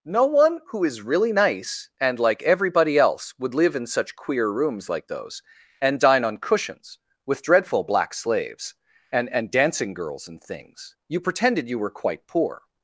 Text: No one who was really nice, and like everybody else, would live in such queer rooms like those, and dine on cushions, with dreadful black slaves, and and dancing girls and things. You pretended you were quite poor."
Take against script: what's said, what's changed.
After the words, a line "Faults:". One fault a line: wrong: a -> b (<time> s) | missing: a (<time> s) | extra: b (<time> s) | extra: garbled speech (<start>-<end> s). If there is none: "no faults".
No one who is really nice, and like everybody else, would live in such queer rooms like those, and dine on cushions, with dreadful black slaves, and and dancing girls and things. You pretended you were quite poor."
Faults:
wrong: was -> is (0.8 s)